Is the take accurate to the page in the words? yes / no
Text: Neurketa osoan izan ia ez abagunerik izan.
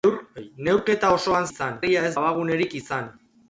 yes